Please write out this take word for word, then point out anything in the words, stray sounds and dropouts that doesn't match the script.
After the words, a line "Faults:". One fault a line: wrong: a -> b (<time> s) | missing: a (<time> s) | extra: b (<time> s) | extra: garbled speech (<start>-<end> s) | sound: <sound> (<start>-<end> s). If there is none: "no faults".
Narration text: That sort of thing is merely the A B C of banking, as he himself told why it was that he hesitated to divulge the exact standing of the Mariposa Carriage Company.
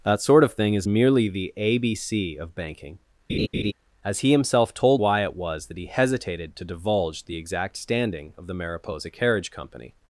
That sort of thing is merely the A B C of banking, as he himself told why it was that he hesitated to divulge the exact standing of the Mariposa Carriage Company.
Faults:
sound: laugh (3.3-3.7 s)